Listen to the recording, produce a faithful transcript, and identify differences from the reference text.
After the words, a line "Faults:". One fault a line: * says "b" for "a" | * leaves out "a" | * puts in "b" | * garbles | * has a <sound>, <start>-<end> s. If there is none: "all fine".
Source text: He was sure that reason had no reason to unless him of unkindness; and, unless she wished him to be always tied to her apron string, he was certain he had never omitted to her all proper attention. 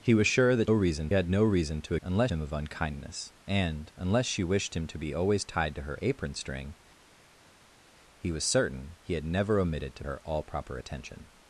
He was sure that reason had no reason to unless him of unkindness; and, unless she wished him to be always tied to her apron string, he was certain he had never omitted to her all proper attention.
Faults:
all fine